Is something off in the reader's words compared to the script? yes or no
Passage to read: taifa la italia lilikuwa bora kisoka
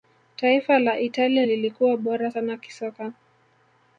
yes